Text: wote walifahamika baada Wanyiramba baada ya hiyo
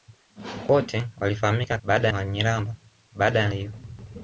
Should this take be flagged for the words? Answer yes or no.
no